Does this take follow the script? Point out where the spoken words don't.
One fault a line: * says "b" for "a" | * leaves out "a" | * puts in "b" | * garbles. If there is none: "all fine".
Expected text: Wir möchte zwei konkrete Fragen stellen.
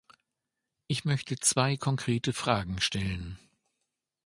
* says "Ich" for "Wir"